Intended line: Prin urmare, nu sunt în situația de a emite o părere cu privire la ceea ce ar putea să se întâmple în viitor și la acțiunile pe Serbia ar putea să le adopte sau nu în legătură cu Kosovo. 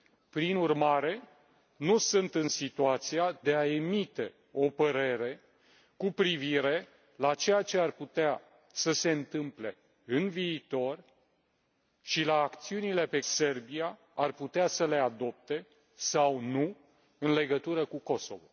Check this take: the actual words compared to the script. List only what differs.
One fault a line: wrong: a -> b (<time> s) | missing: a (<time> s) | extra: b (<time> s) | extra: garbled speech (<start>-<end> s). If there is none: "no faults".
no faults